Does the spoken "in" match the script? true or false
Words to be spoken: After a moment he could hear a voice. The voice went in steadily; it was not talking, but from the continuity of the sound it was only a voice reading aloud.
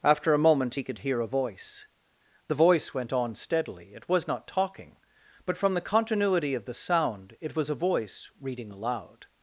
false